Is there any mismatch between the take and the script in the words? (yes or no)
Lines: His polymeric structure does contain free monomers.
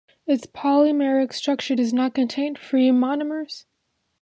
yes